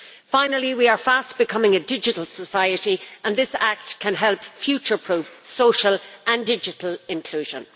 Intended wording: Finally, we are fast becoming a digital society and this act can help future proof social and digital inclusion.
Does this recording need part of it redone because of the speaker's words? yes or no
no